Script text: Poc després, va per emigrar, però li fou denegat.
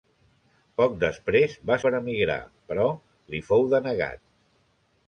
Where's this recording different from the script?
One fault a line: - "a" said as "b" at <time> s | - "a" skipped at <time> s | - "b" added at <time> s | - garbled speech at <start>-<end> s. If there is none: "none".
none